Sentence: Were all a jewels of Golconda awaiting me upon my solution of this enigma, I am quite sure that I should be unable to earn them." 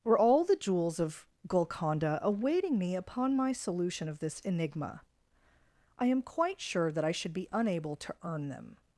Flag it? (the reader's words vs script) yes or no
yes